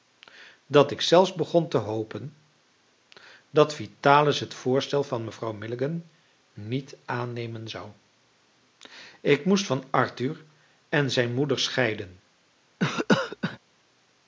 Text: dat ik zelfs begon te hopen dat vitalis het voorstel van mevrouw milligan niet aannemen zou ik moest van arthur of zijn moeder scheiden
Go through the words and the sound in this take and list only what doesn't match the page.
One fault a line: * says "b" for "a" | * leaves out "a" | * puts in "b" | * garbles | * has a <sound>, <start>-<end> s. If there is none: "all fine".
* says "en" for "of"
* has a cough, 12.8-13.6 s